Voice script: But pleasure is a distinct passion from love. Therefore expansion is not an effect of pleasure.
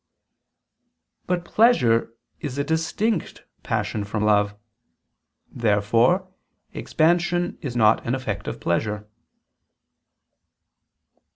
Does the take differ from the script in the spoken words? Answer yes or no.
no